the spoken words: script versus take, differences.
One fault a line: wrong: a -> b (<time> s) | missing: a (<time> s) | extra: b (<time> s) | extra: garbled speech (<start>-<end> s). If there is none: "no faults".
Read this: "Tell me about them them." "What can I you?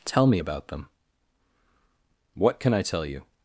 missing: them (0.9 s)
extra: tell (2.8 s)